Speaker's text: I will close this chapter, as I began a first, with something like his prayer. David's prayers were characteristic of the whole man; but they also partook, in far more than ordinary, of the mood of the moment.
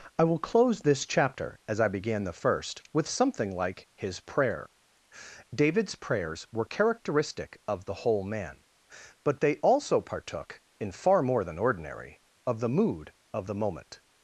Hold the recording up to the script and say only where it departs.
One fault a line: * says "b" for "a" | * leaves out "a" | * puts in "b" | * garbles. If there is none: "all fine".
* says "the" for "a"